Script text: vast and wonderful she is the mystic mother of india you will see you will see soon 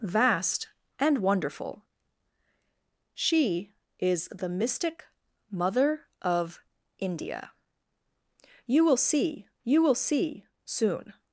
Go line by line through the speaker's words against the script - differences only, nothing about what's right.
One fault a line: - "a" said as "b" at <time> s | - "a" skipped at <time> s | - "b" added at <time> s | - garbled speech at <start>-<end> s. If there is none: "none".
none